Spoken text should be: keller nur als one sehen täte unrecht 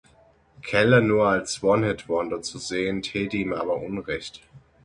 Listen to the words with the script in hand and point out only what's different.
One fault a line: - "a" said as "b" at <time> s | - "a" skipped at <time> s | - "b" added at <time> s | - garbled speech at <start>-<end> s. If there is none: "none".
- "hit wonder zu" added at 1.9 s
- "ihm aber" added at 3.4 s